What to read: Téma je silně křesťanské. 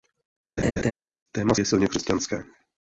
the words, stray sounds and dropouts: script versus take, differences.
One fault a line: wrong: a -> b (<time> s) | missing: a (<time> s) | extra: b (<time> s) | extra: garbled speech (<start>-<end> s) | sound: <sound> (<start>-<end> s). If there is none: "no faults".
sound: laugh (0.6-0.9 s)